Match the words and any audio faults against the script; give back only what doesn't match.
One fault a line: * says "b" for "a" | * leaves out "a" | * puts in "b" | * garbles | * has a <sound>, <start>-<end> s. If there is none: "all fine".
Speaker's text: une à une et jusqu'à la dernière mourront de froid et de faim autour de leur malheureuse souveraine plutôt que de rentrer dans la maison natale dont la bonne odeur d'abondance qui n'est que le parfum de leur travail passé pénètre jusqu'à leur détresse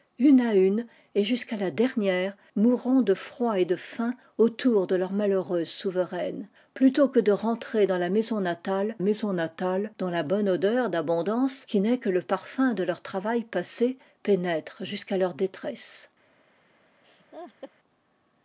* puts in "maison natale"
* has a laugh, 17.0-17.7 s